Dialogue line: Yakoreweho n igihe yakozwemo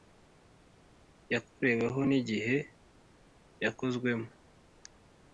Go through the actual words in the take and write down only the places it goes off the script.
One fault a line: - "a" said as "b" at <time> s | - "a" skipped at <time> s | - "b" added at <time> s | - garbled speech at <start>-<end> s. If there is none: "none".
none